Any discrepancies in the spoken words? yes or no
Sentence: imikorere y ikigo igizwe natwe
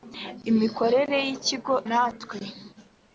yes